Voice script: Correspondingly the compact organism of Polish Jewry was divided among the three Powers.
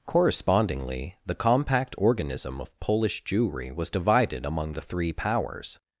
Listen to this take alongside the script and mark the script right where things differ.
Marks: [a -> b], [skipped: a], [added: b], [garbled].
Correspondingly the compact organism of Polish Jewry was divided among the three Powers.